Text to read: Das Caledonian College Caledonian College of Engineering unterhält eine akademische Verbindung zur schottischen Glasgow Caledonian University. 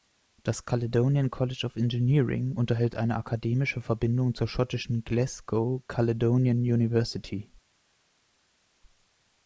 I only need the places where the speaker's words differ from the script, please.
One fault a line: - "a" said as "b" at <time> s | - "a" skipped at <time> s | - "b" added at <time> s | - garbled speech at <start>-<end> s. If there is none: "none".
- "Caledonian College" skipped at 1.6 s